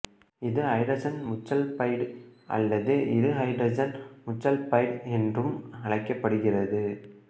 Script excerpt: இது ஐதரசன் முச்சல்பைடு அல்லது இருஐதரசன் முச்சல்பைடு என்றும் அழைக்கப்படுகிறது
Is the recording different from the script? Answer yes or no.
no